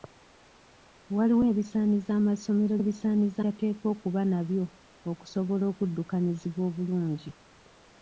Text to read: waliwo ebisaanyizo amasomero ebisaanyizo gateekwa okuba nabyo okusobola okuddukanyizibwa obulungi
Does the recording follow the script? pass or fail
pass